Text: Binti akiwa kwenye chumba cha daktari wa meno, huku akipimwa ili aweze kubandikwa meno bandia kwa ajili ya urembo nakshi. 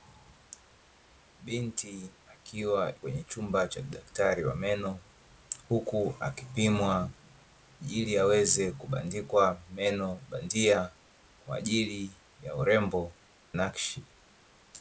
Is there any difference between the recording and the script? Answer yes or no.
no